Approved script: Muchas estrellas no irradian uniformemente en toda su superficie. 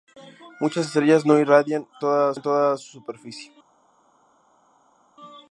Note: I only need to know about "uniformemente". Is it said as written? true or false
false